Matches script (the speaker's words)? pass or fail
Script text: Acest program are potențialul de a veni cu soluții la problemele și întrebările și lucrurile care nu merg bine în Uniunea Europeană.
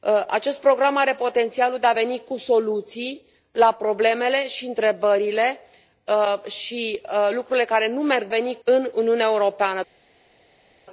fail